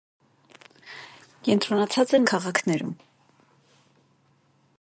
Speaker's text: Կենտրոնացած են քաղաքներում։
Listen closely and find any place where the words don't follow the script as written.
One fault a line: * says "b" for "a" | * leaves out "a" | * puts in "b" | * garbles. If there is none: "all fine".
all fine